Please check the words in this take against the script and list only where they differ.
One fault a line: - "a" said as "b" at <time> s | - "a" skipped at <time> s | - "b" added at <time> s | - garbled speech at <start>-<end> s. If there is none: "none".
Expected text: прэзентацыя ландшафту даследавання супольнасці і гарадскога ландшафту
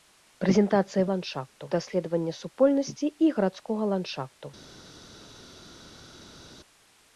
none